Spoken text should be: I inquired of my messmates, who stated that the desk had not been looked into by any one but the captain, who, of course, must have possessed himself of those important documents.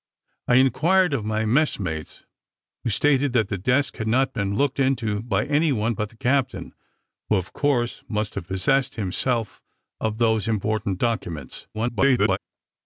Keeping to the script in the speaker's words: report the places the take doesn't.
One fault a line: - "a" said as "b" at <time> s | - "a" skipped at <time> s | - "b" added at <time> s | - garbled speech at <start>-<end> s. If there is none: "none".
- garbled speech at 11.7-12.4 s